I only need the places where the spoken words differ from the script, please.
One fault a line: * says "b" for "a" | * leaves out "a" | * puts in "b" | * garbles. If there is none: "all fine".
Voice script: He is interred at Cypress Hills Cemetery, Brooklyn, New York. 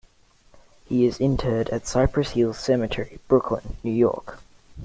all fine